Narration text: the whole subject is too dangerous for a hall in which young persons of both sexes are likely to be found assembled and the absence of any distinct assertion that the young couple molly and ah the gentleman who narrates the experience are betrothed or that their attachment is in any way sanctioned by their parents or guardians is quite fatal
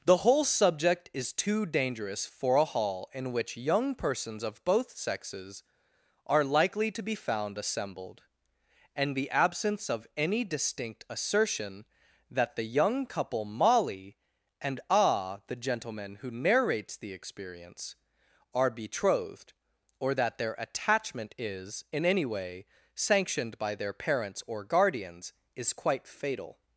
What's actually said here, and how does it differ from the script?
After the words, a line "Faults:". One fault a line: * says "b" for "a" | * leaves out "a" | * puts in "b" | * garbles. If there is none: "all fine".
the whole subject is too dangerous for a hall in which young persons of both sexes are likely to be found assembled and the absence of any distinct assertion that the young couple molly and ah the gentleman who narrates the experience are betrothed or that their attachment is in any way sanctioned by their parents or guardians is quite fatal
Faults:
all fine